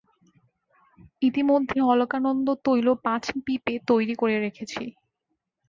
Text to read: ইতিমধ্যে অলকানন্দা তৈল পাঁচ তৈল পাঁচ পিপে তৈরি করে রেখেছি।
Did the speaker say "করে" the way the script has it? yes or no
yes